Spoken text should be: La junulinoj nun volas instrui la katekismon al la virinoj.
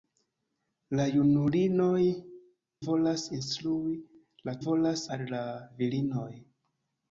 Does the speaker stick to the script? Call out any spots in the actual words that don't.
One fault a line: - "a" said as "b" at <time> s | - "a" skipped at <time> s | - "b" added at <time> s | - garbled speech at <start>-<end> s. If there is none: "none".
- "nun" skipped at 2.0 s
- "katekismon" said as "volas" at 4.7 s